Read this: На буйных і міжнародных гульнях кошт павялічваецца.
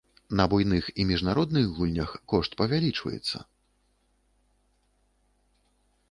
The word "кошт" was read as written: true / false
true